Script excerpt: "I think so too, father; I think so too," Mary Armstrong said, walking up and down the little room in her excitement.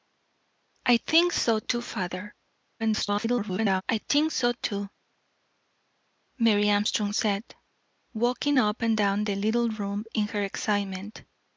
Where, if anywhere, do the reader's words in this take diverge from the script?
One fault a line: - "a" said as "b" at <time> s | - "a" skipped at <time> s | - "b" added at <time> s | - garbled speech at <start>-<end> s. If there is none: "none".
- garbled speech at 2.8-3.8 s